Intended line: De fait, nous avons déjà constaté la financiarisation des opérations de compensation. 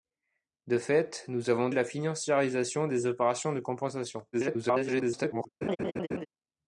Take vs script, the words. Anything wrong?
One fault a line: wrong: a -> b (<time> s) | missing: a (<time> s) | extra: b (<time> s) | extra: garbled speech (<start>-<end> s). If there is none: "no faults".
missing: déjà constaté (1.7 s)
extra: garbled speech (4.3-5.5 s)